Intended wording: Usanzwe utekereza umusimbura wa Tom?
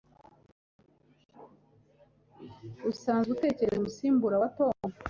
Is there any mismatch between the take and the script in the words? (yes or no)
no